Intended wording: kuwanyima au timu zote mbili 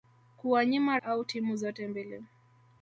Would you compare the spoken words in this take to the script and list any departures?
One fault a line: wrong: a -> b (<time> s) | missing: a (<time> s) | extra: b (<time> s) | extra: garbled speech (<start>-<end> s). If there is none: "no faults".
no faults